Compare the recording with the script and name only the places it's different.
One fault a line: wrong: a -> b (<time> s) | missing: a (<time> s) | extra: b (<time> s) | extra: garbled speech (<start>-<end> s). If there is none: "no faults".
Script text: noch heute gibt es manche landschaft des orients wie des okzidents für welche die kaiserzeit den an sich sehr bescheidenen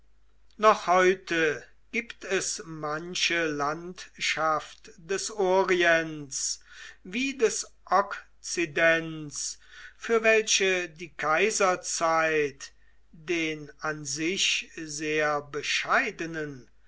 no faults